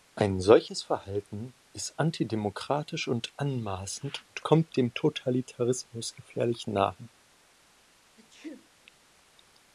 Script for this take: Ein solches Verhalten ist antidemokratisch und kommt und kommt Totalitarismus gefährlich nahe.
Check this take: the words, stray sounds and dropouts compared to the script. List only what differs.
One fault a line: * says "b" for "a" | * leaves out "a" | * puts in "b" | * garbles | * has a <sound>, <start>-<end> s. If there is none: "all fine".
* says "anmaßend" for "kommt"
* puts in "dem"
* has a sneeze, 8.2-8.7 s